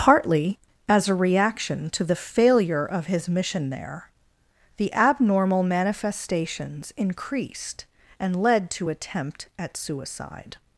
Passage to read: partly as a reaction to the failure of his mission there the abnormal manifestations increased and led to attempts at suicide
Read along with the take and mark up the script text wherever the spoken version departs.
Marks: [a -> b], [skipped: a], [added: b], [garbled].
partly as a reaction to the failure of his mission there the abnormal manifestations increased and led to [attempts -> attempt] at suicide